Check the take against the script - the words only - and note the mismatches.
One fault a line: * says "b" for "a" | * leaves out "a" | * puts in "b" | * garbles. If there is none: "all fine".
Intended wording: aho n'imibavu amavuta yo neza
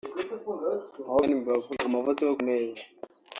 all fine